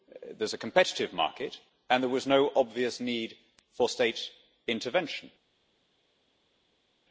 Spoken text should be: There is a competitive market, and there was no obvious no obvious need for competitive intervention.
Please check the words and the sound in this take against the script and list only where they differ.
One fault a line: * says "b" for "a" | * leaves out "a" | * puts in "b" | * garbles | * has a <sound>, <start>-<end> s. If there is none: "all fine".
* leaves out "no obvious"
* says "state" for "competitive"